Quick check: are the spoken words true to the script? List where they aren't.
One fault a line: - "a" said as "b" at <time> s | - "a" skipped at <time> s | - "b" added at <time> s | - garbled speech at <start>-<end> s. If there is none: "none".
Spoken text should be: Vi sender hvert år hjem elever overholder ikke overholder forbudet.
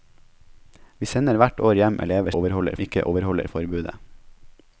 none